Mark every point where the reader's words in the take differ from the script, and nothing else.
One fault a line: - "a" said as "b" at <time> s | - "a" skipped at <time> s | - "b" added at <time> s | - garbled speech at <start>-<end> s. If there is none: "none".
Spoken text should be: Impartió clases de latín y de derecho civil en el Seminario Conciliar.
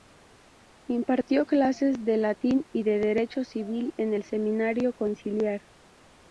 none